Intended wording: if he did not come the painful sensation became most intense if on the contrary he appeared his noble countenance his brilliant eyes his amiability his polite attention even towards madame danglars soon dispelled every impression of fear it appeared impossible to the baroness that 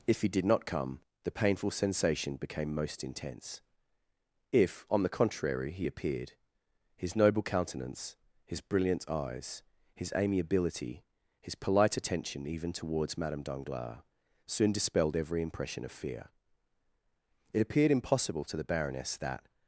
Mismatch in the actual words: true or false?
false